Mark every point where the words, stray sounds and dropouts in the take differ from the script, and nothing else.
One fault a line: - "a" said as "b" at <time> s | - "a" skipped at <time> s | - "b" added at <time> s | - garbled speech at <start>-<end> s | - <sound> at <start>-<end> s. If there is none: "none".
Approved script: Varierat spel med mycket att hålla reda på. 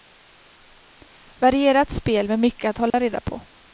- dropout at 2.9-2.9 s